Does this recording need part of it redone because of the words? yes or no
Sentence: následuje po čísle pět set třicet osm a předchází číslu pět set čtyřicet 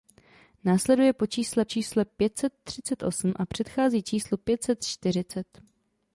yes